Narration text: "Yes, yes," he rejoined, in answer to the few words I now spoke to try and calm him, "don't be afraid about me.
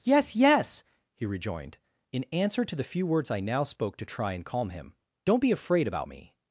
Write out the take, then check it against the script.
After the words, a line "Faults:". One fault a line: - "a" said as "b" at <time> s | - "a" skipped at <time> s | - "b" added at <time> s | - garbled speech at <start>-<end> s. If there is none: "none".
"Yes, yes," he rejoined, in answer to the few words I now spoke to try and calm him, "don't be afraid about me.
Faults:
none